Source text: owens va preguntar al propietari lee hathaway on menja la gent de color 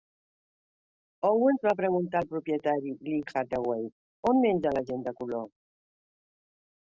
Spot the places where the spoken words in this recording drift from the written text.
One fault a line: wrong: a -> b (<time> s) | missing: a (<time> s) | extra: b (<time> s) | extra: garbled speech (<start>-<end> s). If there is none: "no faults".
no faults